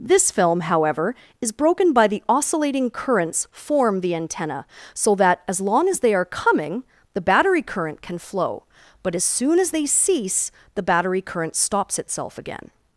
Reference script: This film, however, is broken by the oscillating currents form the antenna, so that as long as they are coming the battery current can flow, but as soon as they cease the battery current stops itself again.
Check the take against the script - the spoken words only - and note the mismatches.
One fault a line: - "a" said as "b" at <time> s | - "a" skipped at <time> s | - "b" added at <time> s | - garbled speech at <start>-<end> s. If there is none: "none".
none